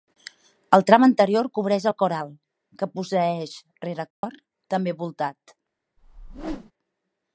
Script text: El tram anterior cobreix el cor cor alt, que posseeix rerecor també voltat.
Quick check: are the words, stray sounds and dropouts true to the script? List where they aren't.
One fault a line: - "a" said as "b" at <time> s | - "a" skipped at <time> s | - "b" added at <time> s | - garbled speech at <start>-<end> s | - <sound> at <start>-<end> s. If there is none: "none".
- "cor" skipped at 2.2 s
- dropout at 4.1-4.2 s
- whoosh at 6.0-6.7 s